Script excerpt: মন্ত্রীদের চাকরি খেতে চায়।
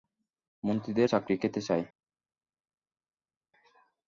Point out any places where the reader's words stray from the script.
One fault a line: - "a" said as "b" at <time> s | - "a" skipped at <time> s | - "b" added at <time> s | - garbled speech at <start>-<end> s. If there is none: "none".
none